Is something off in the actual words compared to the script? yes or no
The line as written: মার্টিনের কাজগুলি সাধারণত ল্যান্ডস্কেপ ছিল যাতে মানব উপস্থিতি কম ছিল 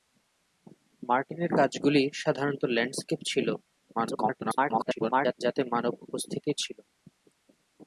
yes